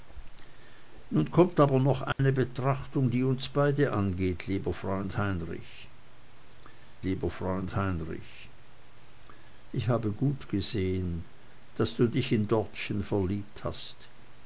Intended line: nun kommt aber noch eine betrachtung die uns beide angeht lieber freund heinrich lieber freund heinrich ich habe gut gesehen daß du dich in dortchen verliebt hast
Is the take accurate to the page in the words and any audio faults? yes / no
no